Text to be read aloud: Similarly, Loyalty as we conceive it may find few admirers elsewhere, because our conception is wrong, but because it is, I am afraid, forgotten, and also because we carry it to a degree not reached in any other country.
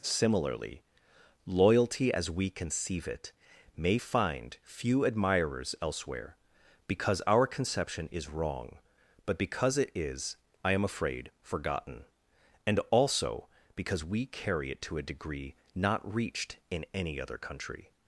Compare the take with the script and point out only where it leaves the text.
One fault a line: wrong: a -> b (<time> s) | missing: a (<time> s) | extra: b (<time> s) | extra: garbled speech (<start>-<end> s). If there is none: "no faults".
no faults